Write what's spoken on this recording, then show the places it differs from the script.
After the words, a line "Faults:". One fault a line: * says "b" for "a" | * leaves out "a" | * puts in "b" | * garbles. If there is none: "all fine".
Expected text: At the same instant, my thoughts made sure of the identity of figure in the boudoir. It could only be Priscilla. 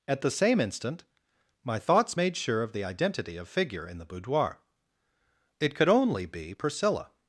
At the same instant, my thoughts made sure of the identity of figure in the boudoir. It could only be Priscilla.
Faults:
all fine